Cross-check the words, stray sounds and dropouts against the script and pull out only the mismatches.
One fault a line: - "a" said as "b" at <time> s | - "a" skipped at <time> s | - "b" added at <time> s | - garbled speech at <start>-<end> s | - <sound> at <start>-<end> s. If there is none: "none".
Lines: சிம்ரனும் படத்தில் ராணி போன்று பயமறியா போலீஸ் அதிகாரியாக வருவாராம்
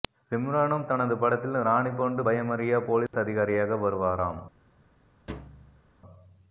- "தனது" added at 0.8 s
- dropout at 3.1-3.1 s
- thud at 5.3-5.8 s